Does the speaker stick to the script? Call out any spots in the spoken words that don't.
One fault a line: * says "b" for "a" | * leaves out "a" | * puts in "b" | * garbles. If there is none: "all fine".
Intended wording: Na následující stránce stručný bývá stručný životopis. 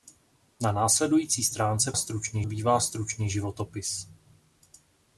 all fine